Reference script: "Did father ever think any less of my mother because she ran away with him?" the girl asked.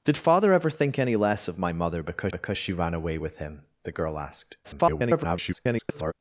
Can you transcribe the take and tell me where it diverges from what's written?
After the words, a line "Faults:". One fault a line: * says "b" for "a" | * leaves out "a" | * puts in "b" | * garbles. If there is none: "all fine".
"Did father ever think any less of my mother because because she ran away with him?" the girl asked. [garbled]
Faults:
* puts in "because"
* garbles